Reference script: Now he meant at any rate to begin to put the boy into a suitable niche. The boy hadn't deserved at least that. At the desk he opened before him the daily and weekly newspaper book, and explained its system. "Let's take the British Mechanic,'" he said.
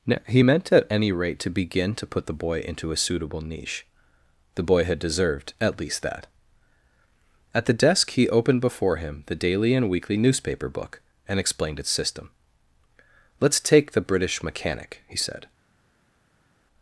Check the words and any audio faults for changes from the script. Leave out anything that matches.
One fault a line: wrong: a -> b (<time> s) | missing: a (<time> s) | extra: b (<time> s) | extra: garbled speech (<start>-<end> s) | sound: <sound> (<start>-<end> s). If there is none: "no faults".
wrong: hadn't -> had (4.8 s)